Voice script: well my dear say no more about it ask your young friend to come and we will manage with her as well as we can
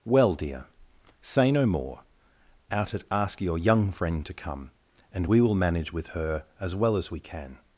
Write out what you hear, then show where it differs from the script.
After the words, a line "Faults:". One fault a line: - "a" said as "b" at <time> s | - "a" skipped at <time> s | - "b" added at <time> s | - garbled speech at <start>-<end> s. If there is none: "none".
well dear say no more out it ask your young friend to come and we will manage with her as well as we can
Faults:
- "my" skipped at 0.3 s
- "about" said as "out" at 2.7 s